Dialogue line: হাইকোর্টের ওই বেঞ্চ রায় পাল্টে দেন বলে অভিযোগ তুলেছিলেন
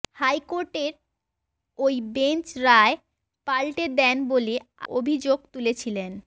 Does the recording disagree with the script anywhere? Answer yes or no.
no